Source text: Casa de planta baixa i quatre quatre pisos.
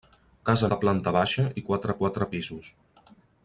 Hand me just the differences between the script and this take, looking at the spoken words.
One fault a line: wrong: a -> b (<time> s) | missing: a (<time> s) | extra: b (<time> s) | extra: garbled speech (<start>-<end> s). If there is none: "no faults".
no faults